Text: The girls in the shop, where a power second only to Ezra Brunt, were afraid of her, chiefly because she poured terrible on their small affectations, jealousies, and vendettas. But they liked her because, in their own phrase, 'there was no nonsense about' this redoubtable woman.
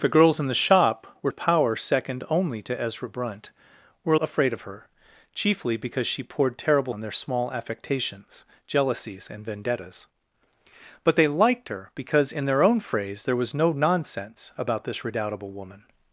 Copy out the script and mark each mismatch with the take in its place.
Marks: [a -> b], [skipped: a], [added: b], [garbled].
The girls in the shop, where a power second only to Ezra Brunt, were afraid of her, chiefly because she poured terrible on their small affectations, jealousies, and vendettas. But they liked her because, in their own phrase, 'there was no nonsense about' this redoubtable woman.